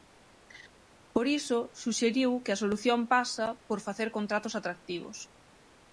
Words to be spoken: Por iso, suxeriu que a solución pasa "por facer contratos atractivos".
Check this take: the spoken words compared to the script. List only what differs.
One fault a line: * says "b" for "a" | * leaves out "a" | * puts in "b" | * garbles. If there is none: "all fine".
all fine